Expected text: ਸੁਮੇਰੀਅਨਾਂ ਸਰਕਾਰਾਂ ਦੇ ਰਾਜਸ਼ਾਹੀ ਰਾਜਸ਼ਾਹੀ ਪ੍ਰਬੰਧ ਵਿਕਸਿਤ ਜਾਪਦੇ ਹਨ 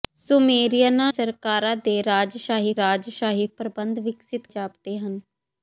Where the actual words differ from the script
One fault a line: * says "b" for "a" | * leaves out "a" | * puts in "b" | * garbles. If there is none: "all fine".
all fine